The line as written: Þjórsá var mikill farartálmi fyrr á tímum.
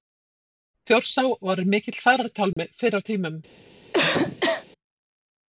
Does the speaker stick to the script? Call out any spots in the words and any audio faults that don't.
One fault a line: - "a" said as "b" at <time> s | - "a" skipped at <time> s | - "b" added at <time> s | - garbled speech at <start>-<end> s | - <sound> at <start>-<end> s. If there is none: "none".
- dropout at 2.5-2.6 s
- cough at 3.9-4.7 s